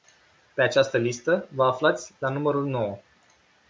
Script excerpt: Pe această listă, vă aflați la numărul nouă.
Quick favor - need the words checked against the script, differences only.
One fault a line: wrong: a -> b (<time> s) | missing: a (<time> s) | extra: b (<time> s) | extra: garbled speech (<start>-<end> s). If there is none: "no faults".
no faults